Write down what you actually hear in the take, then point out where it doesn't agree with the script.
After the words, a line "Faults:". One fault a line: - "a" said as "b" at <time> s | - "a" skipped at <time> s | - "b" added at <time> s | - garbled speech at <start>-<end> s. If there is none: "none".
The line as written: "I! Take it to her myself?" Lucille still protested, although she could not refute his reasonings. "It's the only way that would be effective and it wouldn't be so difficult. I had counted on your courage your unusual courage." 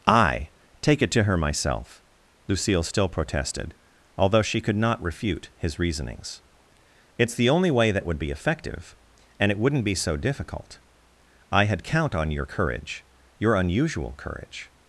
"I! Take it to her myself?" Lucille still protested, although she could not refute his reasonings. "It's the only way that would be effective and it wouldn't be so difficult. I had count on your courage your unusual courage."
Faults:
- "counted" said as "count" at 11.8 s